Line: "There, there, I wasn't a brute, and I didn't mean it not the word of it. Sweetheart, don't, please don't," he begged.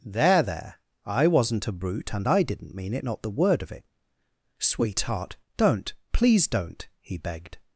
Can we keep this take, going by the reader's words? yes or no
yes